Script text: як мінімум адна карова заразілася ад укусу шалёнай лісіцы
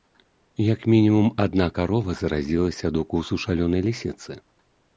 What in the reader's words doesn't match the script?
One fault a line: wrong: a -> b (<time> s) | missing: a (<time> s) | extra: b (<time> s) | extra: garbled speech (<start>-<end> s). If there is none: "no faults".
no faults